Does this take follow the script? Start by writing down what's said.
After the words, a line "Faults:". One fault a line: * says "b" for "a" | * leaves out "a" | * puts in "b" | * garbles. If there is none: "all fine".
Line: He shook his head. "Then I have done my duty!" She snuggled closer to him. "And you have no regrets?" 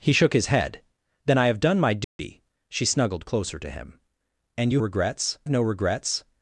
He shook his head. "Then I have done my duty!" She snuggled closer to him. "And you regrets no regrets?"
Faults:
* says "regrets" for "have"